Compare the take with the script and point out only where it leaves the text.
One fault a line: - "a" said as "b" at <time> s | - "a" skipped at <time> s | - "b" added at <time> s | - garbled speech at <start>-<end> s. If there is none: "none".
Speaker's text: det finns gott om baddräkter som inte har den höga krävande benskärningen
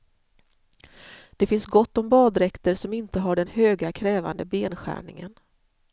none